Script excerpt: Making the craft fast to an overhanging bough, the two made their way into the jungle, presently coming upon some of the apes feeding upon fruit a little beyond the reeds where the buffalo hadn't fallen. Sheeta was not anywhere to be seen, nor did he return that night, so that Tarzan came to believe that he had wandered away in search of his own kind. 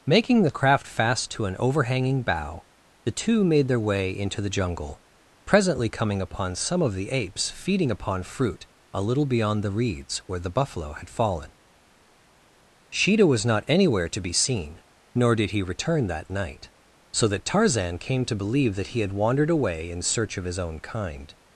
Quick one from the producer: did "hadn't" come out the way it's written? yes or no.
no